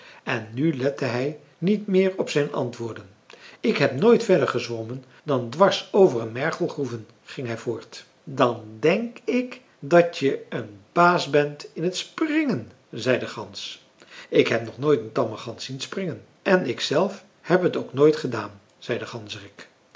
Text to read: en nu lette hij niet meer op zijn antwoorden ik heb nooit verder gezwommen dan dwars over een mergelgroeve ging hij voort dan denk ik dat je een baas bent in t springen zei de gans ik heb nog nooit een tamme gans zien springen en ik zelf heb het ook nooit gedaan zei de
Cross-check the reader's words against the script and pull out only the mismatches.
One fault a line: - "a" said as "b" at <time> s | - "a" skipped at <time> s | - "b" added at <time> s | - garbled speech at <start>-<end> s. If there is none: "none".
none